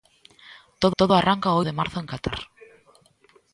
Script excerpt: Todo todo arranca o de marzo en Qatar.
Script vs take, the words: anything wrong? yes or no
no